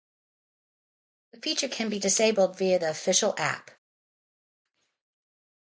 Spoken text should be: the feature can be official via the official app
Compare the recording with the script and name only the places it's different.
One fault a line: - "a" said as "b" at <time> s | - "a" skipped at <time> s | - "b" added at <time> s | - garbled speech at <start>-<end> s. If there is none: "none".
- "official" said as "disabled" at 2.0 s